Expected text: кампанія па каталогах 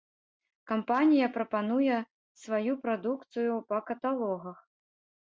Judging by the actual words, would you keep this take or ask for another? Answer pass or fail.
fail